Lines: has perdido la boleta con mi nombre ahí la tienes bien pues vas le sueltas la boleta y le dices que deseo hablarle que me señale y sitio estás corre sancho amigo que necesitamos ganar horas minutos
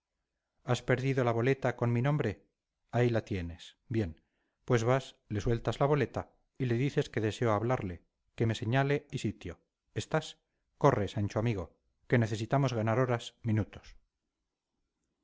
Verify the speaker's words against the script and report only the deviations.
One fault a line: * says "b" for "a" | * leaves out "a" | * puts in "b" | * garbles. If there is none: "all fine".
all fine